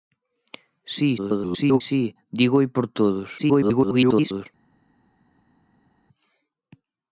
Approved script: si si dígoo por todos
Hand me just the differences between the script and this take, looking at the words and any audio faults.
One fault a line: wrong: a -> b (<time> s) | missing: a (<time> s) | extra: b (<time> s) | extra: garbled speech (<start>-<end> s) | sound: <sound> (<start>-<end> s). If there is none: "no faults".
extra: garbled speech (1.2-1.8 s)
extra: garbled speech (3.4-4.5 s)